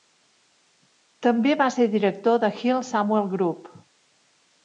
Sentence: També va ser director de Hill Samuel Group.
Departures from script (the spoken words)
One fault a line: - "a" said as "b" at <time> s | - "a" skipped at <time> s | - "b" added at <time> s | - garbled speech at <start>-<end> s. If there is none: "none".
none